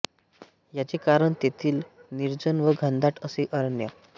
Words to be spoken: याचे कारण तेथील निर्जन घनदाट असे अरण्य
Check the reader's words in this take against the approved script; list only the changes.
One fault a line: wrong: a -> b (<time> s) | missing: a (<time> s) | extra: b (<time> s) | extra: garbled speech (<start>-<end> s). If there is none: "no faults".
extra: व (2.6 s)